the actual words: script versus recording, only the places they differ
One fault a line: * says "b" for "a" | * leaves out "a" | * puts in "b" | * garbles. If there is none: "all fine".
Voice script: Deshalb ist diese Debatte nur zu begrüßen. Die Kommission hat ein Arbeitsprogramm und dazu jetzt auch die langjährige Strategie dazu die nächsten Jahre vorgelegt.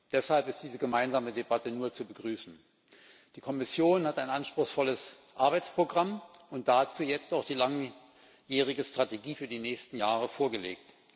* puts in "gemeinsame"
* puts in "anspruchsvolles"
* says "für" for "dazu"